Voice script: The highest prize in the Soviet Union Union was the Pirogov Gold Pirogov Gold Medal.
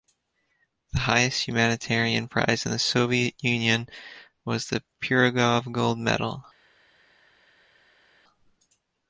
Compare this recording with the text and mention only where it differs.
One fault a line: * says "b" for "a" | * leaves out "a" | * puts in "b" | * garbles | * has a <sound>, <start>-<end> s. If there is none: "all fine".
* puts in "humanitarian"
* leaves out "Union"
* leaves out "Pirogov Gold"